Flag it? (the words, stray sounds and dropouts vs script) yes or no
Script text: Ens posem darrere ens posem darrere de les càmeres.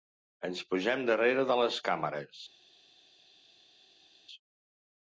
yes